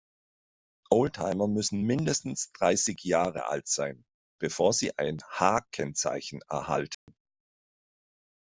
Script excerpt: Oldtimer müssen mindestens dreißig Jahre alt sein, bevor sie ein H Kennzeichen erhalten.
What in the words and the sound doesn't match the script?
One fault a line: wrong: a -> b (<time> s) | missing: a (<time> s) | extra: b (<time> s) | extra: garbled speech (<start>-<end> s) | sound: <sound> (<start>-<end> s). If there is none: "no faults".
sound: dropout (6.9-7.1 s)